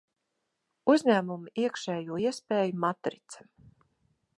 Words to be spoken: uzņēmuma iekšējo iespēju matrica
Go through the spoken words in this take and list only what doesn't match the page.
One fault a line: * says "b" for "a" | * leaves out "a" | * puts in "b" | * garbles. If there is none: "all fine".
all fine